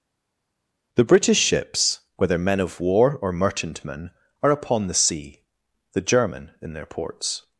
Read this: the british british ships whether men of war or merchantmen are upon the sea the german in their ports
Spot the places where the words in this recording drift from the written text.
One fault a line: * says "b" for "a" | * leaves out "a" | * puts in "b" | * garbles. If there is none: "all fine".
* leaves out "british"